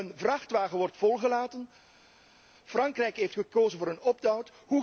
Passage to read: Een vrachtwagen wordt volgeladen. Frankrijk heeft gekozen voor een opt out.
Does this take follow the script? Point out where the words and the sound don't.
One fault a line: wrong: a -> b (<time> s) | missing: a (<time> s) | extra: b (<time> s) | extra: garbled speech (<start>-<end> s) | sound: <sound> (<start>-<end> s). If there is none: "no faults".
no faults